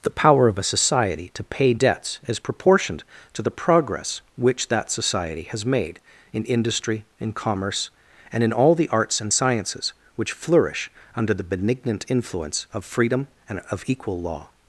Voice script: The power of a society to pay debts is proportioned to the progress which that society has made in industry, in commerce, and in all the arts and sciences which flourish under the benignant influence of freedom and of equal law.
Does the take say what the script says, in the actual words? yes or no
yes